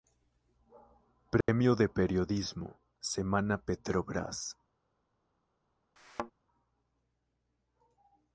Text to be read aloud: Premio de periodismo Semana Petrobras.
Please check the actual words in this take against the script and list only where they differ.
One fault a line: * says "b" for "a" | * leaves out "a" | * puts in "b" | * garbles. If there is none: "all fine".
all fine